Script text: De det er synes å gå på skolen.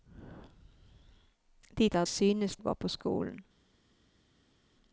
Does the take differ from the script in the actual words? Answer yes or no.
no